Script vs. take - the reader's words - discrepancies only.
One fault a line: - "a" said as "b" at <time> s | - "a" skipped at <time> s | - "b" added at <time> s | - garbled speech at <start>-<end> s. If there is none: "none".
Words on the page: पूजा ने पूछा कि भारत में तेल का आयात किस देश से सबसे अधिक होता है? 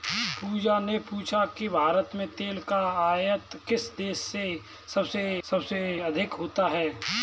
- "सबसे" added at 5.4 s